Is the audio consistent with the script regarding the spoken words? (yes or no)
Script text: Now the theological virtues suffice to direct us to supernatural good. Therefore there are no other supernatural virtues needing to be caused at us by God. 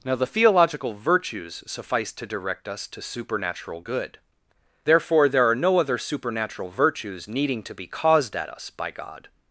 yes